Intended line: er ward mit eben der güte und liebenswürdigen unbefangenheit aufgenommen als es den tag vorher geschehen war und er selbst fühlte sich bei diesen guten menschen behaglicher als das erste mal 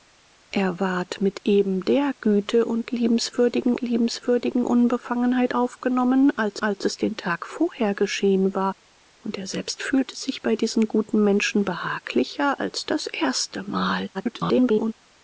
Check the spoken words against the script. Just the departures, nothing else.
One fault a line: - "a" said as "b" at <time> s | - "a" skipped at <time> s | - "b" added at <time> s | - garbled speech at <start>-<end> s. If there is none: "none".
- "liebenswürdigen" added at 3.8 s
- "als" added at 6.6 s
- garbled speech at 14.1-14.9 s